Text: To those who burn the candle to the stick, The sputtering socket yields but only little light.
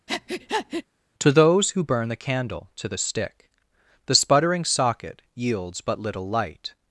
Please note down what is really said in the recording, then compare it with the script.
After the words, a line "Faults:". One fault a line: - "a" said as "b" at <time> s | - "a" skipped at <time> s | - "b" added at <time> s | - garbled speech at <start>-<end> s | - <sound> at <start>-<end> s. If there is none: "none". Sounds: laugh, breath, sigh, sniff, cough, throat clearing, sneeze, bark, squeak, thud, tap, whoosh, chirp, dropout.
To those who burn the candle to the stick, The sputtering socket yields but little light.
Faults:
- breath at 0.1-0.8 s
- "only" skipped at 6.0 s